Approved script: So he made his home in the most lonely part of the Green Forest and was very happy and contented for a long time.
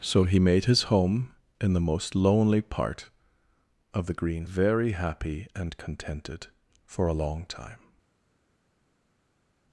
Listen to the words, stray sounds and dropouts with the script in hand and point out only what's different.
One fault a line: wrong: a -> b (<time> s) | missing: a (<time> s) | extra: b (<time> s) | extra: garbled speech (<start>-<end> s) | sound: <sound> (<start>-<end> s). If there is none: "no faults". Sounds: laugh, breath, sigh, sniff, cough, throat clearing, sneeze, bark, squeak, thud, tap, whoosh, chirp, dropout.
missing: Forest and was (4.5 s)